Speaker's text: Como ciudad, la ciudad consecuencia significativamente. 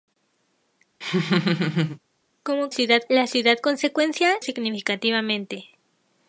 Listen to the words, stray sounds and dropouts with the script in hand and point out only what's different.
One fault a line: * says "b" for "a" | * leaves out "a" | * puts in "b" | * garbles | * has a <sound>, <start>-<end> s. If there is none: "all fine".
* has a laugh, 1.0-2.0 s